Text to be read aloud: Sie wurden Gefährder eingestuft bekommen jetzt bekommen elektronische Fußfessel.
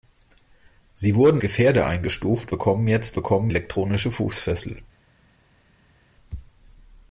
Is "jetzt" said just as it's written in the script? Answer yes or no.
yes